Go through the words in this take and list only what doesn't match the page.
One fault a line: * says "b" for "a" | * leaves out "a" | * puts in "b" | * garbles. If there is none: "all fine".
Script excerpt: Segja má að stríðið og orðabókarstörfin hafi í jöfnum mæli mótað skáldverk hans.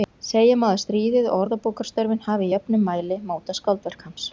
all fine